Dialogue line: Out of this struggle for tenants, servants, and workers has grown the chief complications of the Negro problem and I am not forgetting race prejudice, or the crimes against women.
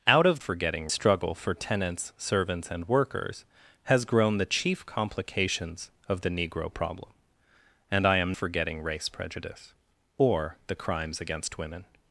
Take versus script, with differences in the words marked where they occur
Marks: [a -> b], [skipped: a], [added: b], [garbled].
Out of [this -> forgetting] struggle for tenants, servants, and workers has grown the chief complications of the Negro problem and I am [skipped: not] forgetting race prejudice, or the crimes against women.